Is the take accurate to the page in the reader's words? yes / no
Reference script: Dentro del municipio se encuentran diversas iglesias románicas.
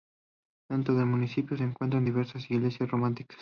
yes